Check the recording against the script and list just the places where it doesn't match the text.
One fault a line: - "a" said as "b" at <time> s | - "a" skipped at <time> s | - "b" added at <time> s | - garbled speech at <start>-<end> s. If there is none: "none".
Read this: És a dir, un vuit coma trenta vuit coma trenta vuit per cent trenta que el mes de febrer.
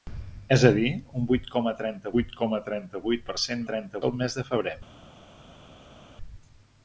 none